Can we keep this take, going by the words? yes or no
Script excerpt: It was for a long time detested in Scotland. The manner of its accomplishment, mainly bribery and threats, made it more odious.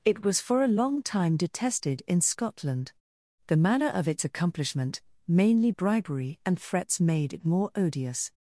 yes